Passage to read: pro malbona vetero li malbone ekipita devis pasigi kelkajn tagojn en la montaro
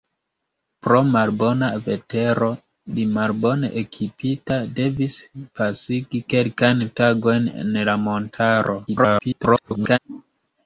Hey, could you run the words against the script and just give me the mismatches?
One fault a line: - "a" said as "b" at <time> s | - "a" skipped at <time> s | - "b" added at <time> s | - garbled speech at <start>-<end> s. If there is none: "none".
- garbled speech at 8.9-10.0 s